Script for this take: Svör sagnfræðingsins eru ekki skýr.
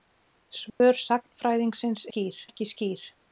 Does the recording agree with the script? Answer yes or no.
no